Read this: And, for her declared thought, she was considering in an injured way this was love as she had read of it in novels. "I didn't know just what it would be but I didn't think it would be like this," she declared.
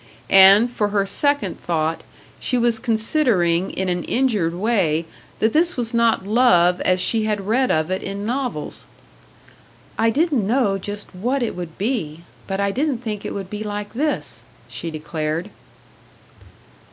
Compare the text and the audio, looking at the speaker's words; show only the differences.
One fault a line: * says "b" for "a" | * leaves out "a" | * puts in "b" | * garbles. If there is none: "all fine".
* says "second" for "declared"
* puts in "that"
* puts in "not"